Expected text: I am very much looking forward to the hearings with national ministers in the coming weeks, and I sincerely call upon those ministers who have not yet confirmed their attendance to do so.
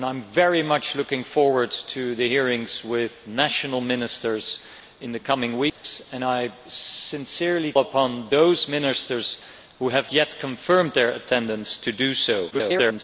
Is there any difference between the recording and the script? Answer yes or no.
yes